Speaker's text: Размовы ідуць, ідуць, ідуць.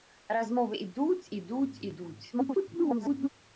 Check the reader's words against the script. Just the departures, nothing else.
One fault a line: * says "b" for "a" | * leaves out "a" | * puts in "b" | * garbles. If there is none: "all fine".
* garbles